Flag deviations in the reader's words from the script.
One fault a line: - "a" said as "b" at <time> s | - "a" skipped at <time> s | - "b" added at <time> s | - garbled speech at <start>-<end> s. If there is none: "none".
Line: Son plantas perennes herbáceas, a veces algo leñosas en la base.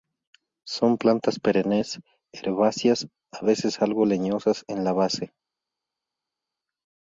none